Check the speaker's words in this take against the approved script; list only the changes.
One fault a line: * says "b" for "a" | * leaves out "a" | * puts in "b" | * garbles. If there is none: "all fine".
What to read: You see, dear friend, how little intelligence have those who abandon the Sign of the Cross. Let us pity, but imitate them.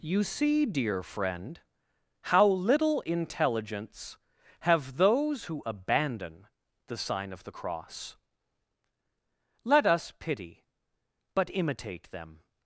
all fine